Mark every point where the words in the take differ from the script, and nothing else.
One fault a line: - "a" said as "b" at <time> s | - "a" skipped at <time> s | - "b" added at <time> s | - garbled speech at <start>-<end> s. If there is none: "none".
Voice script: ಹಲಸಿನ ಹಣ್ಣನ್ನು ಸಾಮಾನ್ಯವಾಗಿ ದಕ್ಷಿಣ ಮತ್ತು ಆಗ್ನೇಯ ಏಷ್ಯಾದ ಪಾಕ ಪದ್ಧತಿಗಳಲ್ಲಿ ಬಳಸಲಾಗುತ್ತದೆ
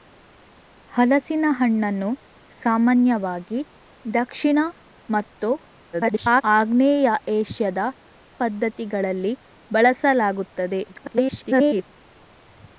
- garbled speech at 5.9-6.4 s
- "ಪಾಕ" skipped at 7.8 s
- garbled speech at 10.9-11.8 s